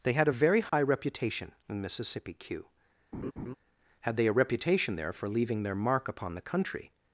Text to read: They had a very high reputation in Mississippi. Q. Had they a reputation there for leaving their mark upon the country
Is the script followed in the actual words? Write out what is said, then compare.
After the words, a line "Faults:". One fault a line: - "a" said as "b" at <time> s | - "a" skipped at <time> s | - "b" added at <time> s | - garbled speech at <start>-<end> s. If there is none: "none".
They had a very high reputation in Mississippi. Q. Had they a reputation there for leaving their mark upon the country
Faults:
none